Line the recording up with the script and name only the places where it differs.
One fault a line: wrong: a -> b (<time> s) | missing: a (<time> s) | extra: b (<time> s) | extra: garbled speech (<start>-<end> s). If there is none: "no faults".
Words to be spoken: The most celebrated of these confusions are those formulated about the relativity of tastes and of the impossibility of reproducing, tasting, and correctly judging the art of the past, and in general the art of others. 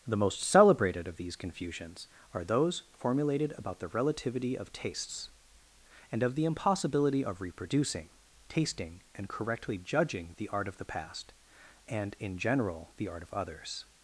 no faults